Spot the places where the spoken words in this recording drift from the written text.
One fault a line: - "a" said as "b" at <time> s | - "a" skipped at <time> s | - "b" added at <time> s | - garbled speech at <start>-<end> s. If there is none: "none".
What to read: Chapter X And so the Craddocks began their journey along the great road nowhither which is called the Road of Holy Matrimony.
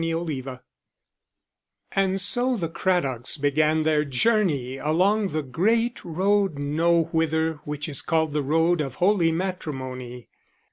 none